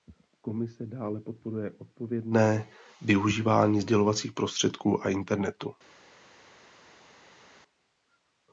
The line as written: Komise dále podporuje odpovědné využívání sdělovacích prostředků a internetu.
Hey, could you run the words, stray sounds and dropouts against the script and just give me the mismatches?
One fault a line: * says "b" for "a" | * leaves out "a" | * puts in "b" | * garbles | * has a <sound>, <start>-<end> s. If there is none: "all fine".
all fine